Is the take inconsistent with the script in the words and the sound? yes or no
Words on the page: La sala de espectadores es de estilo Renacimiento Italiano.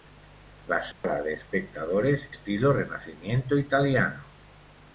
yes